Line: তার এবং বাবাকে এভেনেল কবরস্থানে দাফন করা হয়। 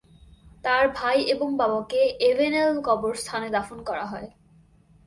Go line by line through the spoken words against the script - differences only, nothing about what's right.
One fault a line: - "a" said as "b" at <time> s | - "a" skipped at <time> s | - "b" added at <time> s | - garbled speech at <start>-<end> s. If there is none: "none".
- "ভাই" added at 0.9 s